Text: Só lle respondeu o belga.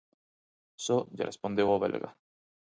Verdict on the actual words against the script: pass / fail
pass